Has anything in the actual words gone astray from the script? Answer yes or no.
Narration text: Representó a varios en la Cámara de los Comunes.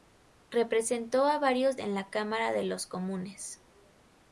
no